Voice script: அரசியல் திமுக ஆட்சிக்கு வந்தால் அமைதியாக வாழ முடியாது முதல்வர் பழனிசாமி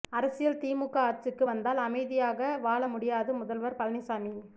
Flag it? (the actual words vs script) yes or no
no